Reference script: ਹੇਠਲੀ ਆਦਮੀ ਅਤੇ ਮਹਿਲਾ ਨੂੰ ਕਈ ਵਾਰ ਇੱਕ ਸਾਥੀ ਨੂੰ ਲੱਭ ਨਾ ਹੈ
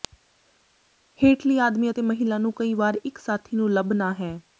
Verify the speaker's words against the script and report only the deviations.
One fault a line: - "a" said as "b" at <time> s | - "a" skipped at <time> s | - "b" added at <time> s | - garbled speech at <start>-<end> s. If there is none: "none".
none